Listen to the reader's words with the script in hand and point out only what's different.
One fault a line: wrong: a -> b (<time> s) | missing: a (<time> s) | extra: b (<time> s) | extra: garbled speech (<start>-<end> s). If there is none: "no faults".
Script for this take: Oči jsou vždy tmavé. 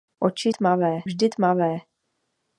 wrong: jsou -> tmavé (0.5 s)